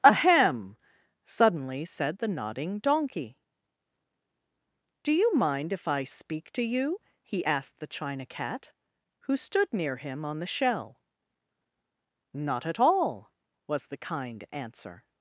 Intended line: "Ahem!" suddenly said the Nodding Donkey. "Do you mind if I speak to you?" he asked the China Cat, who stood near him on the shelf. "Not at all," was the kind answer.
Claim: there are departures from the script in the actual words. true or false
true